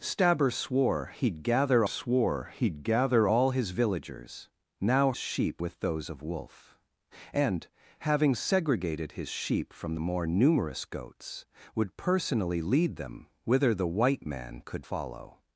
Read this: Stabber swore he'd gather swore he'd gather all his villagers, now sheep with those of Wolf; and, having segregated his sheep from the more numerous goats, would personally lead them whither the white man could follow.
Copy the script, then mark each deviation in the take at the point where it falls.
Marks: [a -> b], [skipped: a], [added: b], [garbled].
Stabber swore he'd gather swore he'd gather all his villagers, now sheep with those of Wolf; and, having segregated his sheep from the more numerous goats, would personally lead them whither the white man could follow.